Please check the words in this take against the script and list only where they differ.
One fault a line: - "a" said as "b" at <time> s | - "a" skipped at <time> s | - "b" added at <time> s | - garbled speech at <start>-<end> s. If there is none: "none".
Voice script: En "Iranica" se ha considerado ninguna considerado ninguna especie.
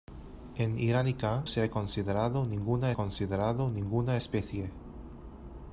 none